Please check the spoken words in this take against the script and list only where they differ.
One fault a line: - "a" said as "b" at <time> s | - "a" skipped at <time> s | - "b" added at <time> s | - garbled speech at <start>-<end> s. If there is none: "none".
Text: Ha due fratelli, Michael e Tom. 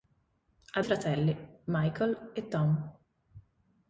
- "due" skipped at 0.8 s